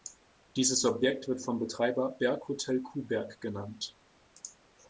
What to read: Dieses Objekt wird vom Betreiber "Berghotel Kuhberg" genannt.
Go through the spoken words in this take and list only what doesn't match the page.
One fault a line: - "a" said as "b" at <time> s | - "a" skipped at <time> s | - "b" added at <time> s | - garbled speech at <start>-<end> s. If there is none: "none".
none